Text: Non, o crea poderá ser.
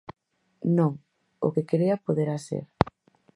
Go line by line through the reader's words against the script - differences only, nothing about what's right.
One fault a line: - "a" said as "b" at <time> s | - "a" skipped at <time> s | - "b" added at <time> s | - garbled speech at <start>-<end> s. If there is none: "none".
- "que" added at 1.5 s